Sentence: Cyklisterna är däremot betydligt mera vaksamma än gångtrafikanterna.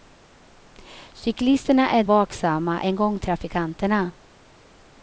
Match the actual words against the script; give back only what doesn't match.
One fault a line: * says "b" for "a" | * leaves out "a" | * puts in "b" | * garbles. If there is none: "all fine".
* leaves out "däremot betydligt mera"